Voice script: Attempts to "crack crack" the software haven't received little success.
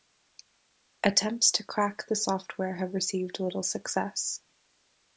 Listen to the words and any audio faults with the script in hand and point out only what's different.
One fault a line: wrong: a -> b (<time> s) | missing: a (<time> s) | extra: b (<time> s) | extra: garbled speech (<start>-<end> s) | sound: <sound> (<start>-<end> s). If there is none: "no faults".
missing: crack (2.1 s)
wrong: haven't -> have (2.8 s)